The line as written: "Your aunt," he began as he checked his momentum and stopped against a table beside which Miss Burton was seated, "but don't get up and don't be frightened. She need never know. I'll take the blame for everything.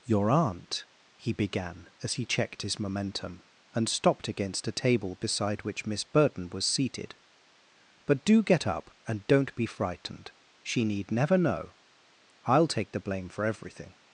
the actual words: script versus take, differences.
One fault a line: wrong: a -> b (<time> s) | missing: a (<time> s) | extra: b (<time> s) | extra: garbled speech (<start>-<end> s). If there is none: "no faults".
wrong: don't -> do (8.2 s)